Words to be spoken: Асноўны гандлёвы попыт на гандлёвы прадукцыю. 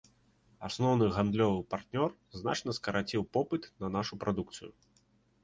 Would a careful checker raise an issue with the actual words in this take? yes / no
yes